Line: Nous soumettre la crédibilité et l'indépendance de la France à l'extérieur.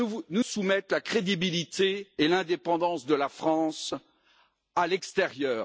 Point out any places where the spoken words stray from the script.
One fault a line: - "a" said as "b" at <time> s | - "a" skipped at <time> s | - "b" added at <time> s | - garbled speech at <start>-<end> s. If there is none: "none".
none